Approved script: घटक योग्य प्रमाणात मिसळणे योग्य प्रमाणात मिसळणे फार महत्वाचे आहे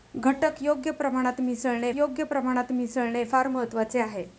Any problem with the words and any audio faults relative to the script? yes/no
no